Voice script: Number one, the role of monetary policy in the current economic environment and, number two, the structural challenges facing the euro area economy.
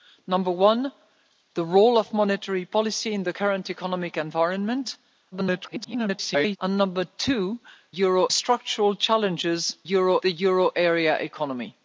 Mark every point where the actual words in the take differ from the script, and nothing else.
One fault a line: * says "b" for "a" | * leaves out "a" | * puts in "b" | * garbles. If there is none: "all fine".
* garbles
* says "euro" for "the"
* says "euro" for "facing"